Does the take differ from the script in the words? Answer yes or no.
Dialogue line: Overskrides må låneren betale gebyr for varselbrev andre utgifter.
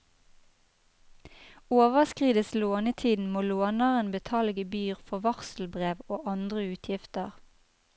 yes